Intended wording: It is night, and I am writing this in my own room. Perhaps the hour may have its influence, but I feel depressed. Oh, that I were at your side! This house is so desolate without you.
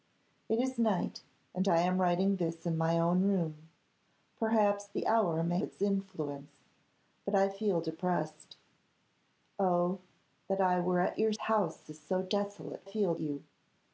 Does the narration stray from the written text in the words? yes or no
yes